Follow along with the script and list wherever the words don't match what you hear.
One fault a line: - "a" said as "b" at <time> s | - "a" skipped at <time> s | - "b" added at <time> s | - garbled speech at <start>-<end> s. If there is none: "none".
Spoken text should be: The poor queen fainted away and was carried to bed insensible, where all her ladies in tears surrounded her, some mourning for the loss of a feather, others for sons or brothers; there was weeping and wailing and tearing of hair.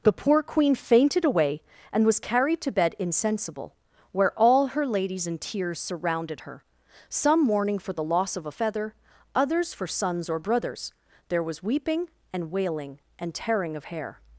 none